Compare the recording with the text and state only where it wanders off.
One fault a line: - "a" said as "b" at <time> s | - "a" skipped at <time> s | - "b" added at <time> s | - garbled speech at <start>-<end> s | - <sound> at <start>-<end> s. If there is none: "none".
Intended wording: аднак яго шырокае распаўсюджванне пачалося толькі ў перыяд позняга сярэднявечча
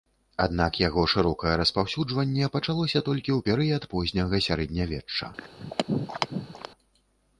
- throat clearing at 5.4-6.7 s